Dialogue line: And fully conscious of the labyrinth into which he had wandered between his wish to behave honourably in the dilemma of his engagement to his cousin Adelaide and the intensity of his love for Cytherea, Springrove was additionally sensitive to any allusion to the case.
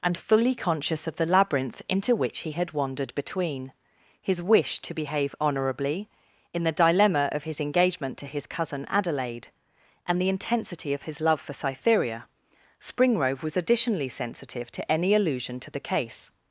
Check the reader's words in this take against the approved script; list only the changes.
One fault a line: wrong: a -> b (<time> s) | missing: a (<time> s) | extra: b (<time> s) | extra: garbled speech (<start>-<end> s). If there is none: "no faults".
no faults